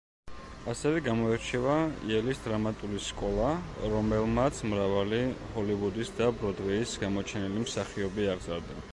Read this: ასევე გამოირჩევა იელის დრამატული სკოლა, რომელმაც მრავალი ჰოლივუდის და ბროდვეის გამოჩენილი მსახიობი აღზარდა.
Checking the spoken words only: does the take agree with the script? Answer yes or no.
yes